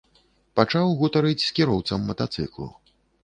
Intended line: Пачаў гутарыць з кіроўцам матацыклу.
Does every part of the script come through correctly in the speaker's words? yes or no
yes